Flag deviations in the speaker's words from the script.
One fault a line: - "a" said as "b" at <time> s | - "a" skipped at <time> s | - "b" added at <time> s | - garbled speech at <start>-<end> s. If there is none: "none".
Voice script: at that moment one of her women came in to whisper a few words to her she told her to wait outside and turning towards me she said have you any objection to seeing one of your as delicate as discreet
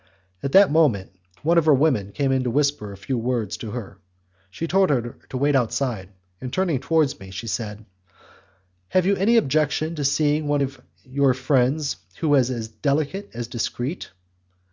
- "friends who is" added at 11.3 s